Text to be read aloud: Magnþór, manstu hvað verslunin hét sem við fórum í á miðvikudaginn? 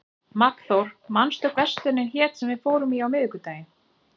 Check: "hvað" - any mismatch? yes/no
yes